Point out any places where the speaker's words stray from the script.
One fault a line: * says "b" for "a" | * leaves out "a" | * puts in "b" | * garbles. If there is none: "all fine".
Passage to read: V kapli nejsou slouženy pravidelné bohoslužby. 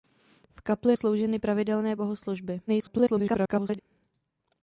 * leaves out "nejsou"
* garbles